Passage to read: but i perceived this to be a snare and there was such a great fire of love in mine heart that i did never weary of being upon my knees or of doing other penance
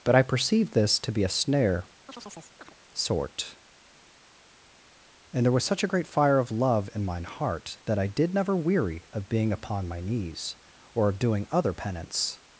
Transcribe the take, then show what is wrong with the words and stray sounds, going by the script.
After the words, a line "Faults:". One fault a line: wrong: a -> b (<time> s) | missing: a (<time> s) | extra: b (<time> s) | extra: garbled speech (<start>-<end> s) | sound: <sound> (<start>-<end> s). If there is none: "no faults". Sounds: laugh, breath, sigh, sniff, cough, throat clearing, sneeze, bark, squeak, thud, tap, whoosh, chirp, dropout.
but i perceived this to be a snare sort and there was such a great fire of love in mine heart that i did never weary of being upon my knees or of doing other penance
Faults:
sound: chirp (2.1-2.8 s)
extra: sort (2.9 s)